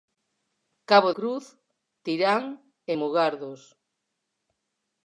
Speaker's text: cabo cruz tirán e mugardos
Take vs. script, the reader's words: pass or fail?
pass